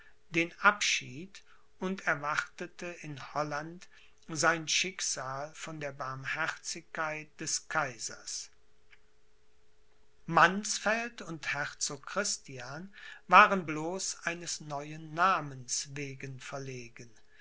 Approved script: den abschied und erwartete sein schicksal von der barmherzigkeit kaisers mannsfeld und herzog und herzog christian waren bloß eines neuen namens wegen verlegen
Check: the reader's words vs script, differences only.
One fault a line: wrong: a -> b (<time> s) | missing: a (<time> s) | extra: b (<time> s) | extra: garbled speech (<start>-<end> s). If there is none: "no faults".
extra: in holland (3.0 s)
extra: des (7.4 s)
missing: und herzog (12.0 s)